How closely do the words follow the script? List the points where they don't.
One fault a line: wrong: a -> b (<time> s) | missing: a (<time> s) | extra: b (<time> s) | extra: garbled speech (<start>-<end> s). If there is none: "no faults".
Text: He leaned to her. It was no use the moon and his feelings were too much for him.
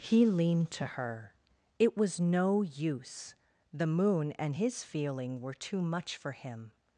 wrong: feelings -> feeling (4.8 s)